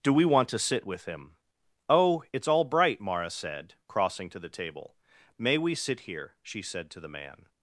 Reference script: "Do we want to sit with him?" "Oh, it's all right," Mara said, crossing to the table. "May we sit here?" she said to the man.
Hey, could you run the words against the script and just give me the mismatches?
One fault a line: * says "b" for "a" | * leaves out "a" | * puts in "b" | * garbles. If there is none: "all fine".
* says "bright" for "right"